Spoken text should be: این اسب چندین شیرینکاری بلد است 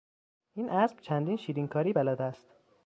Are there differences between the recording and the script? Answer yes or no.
no